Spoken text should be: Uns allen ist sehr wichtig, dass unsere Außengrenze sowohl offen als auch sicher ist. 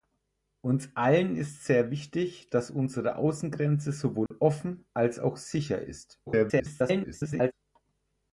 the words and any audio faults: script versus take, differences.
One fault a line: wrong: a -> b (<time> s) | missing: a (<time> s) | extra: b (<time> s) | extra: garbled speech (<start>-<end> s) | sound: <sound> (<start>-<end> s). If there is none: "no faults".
sound: dropout (4.3-4.3 s)
extra: garbled speech (6.3-7.5 s)